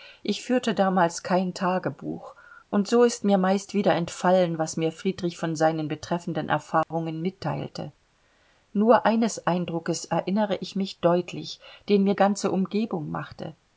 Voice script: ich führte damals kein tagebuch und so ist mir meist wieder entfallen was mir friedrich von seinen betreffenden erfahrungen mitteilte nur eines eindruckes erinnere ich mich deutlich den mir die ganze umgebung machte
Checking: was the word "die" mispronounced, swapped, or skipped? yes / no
yes